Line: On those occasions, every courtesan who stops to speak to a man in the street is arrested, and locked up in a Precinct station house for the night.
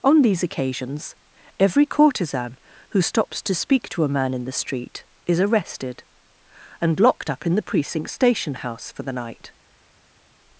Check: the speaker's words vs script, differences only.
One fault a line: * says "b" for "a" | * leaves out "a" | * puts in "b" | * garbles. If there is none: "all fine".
* says "these" for "those"
* says "the" for "a"